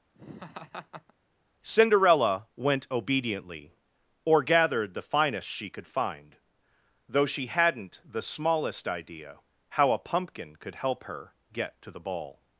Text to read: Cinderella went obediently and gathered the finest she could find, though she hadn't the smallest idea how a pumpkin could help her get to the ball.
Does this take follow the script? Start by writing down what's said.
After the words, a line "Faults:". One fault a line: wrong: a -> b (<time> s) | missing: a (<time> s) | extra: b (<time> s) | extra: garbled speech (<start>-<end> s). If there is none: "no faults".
Cinderella went obediently or gathered the finest she could find, though she hadn't the smallest idea how a pumpkin could help her get to the ball.
Faults:
wrong: and -> or (4.2 s)